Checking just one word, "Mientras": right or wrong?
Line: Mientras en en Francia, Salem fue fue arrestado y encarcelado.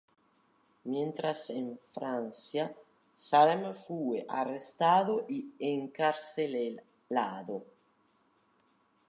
right